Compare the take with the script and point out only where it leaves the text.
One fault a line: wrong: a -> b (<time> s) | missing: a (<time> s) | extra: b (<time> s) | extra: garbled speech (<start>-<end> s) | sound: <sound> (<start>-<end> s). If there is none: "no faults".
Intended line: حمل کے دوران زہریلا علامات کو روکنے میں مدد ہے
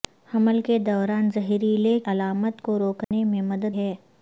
sound: dropout (3.0-3.1 s)